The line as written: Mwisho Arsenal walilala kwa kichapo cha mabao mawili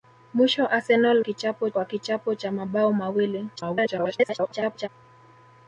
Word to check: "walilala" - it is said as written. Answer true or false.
false